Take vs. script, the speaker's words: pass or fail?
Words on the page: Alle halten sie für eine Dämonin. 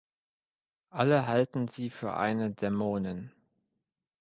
pass